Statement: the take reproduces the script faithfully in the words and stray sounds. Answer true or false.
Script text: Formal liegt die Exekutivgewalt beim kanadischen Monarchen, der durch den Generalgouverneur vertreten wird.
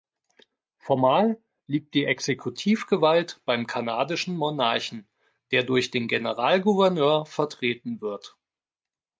true